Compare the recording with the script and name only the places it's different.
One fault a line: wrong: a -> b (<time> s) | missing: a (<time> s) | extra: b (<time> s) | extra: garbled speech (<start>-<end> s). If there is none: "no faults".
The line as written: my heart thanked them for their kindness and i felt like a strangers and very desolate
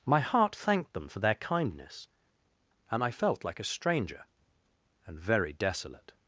wrong: strangers -> stranger (3.6 s)